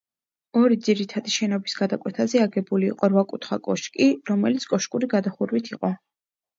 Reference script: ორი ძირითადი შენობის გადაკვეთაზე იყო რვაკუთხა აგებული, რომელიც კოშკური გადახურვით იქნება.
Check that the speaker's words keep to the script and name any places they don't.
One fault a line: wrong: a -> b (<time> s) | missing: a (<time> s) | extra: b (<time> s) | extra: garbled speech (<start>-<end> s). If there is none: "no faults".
extra: აგებული (2.5 s)
wrong: აგებული -> კოშკი (3.7 s)
wrong: იქნება -> იყო (5.8 s)